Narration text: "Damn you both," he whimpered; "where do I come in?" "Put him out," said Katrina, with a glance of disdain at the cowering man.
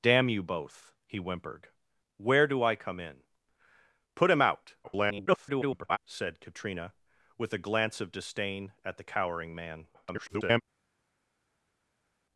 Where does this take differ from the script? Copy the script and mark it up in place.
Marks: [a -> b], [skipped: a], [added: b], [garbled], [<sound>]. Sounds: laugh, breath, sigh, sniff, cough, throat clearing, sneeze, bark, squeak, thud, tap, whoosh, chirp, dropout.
"Damn you both," he whimpered; "where do I come in?" "Put him out," [garbled] said Katrina, with a glance of disdain at the cowering man. [garbled]